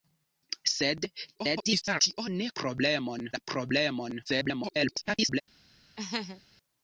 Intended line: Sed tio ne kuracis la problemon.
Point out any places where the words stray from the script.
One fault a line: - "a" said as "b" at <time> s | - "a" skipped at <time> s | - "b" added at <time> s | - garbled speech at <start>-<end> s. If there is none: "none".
- garbled speech at 1.4-2.0 s
- "kuracis" said as "problemon" at 2.6 s
- garbled speech at 4.3-5.4 s